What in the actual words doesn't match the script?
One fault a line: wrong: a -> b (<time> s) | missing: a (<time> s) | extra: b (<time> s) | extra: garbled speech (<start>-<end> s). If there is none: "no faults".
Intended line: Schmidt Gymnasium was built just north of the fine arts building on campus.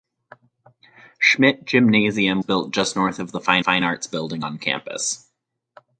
missing: was (2.4 s)
extra: fine (3.6 s)